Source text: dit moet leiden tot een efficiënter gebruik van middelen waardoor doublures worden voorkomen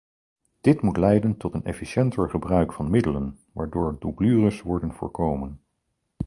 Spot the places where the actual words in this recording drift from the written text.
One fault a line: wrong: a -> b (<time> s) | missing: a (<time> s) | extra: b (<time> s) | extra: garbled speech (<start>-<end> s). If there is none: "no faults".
no faults